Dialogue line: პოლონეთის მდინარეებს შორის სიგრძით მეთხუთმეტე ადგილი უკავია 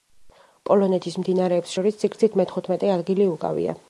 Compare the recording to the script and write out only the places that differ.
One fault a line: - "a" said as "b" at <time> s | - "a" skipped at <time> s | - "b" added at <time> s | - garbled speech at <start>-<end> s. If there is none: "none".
none